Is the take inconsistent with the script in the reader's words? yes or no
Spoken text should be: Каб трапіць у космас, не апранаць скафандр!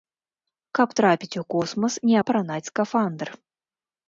no